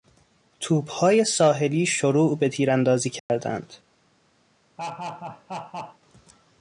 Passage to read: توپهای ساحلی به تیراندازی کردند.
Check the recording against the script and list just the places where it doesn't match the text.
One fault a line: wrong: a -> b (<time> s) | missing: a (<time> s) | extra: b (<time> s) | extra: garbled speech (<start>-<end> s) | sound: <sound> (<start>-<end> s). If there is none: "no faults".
extra: شروع (1.9 s)
sound: dropout (3.2-3.3 s)
sound: laugh (4.8-6.0 s)